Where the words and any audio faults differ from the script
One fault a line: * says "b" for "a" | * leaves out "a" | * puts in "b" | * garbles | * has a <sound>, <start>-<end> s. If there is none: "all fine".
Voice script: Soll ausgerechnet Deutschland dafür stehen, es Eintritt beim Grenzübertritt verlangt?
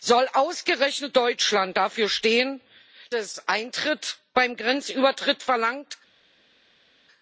all fine